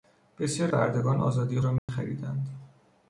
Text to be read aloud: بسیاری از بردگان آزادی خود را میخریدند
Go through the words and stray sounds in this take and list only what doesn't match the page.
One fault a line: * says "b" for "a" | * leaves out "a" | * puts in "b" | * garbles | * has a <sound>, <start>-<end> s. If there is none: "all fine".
* leaves out "از"
* leaves out "خود"
* has a dropout, 1.8-1.9 s